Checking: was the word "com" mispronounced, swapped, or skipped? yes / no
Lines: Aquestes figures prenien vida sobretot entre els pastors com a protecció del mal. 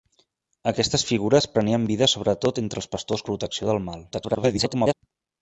yes